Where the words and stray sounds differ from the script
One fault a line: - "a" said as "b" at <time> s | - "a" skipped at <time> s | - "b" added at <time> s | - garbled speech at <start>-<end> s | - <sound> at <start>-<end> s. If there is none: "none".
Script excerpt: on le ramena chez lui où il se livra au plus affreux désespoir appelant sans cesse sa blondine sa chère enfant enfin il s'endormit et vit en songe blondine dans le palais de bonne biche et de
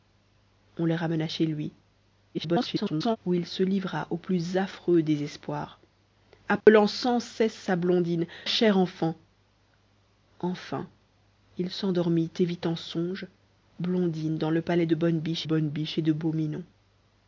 - garbled speech at 2.3-3.2 s
- dropout at 6.6-6.7 s
- "sa" skipped at 8.3 s
- "bonne biche" added at 15.4 s